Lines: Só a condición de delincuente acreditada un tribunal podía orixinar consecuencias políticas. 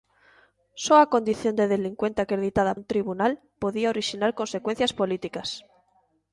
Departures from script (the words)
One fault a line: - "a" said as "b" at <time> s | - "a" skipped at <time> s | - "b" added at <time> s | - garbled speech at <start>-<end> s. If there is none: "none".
none